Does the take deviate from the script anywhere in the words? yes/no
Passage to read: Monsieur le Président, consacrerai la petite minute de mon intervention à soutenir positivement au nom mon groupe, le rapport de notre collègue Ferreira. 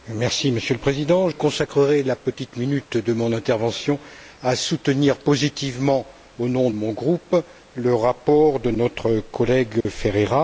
no